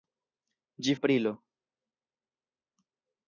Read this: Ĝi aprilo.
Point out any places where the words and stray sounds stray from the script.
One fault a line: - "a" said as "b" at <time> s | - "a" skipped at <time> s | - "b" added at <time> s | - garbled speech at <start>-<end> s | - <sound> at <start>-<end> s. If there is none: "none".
none